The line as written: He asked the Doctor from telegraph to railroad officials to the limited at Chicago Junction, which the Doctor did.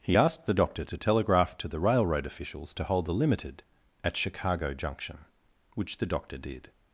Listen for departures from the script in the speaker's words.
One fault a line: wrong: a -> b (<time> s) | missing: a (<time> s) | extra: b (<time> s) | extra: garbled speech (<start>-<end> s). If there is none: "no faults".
wrong: from -> to (0.9 s)
extra: the (1.7 s)
extra: hold (2.9 s)